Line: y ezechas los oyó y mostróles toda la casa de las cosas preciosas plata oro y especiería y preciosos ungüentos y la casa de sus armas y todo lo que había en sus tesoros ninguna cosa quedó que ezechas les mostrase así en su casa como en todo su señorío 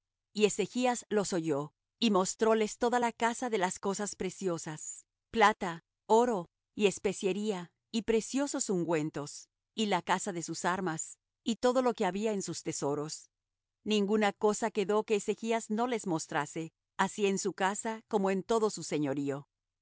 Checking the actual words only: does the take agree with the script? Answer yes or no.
no